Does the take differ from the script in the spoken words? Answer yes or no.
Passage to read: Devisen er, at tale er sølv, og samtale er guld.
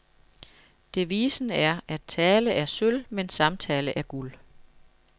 yes